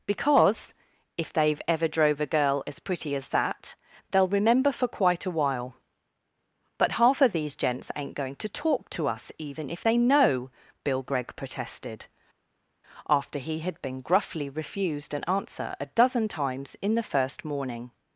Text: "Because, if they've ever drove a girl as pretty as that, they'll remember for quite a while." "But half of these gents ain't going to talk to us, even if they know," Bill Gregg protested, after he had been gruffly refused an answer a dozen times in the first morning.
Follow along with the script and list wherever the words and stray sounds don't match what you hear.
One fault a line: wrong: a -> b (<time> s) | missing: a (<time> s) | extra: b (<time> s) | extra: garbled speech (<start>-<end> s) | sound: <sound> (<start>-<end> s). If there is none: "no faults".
no faults